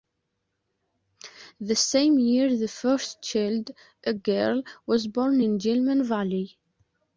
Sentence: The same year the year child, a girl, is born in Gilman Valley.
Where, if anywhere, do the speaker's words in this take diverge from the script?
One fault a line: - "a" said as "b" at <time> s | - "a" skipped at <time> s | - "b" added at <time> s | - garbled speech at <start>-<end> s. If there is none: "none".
- "year" said as "first" at 2.7 s
- "is" said as "was" at 4.9 s